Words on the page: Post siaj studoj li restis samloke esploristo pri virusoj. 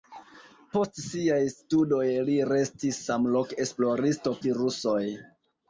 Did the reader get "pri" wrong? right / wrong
wrong